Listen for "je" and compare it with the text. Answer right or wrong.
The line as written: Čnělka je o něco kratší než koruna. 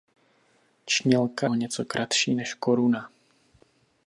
wrong